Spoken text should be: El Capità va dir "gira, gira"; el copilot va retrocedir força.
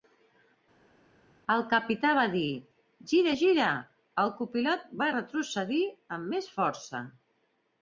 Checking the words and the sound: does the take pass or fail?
fail